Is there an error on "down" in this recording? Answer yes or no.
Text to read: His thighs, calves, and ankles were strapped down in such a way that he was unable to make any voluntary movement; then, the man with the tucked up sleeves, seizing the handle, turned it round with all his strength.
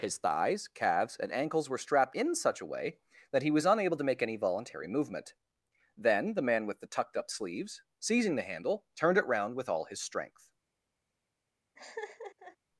yes